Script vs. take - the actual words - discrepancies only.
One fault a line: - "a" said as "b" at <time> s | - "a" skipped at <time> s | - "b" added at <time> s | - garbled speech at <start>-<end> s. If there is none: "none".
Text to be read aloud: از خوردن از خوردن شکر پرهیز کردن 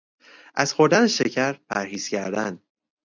- "از خوردن" skipped at 1.1 s